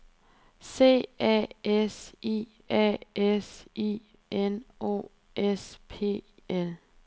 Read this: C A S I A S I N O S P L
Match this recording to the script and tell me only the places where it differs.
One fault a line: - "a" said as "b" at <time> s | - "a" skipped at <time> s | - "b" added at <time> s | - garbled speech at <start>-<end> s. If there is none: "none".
none